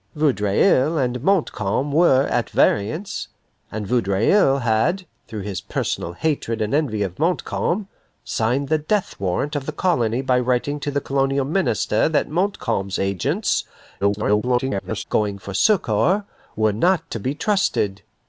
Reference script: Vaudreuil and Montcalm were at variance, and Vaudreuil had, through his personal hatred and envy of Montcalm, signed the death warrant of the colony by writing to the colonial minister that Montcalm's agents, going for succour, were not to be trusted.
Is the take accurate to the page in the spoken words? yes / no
no